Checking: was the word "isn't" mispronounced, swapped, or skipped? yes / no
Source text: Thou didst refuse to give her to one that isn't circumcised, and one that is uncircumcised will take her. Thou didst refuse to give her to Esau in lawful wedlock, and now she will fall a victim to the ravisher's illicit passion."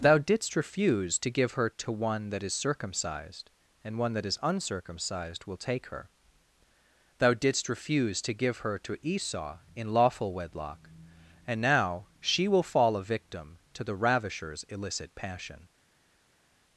yes